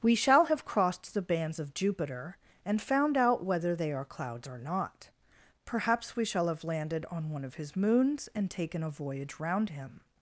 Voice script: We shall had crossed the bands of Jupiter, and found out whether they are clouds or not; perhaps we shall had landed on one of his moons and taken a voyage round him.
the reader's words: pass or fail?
fail